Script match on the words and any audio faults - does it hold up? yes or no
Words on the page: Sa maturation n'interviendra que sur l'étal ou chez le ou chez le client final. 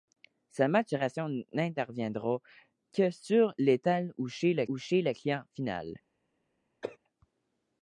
no